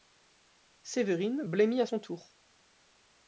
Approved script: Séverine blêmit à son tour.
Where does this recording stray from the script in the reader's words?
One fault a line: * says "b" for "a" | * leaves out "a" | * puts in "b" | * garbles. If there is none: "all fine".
all fine